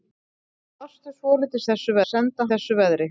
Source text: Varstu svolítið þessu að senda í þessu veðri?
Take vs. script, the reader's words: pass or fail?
pass